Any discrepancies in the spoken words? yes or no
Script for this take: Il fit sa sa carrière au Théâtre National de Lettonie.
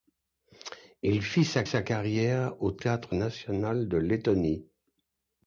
no